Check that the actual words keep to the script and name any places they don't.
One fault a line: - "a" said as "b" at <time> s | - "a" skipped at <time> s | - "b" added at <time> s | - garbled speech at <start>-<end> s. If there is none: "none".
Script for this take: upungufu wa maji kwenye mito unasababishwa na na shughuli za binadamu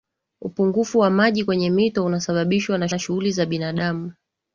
none